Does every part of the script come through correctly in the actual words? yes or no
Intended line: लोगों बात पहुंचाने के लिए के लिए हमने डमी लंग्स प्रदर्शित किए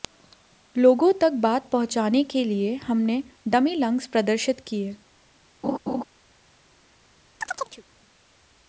no